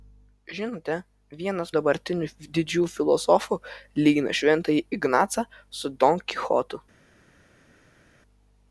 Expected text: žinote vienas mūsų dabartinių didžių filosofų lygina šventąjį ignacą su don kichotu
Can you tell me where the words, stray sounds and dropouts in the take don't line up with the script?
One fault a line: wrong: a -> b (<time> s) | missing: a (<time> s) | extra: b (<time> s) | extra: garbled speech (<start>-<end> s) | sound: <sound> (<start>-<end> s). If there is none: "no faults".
missing: mūsų (1.7 s)